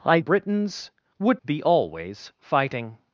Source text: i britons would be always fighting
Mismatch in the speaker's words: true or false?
false